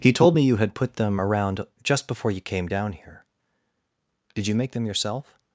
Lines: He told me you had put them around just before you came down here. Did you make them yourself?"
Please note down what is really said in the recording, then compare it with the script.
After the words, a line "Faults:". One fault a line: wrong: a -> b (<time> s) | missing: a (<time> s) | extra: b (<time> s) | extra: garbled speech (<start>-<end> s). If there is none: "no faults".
He told me you had put them around just before you came down here. Did you make them yourself?"
Faults:
no faults